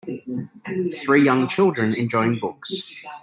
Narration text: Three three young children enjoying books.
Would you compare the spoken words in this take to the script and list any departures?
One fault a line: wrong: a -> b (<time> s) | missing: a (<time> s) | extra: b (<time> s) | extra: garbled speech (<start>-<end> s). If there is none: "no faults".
missing: three (1.2 s)